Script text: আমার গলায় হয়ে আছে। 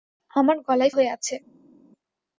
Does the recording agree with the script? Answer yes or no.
yes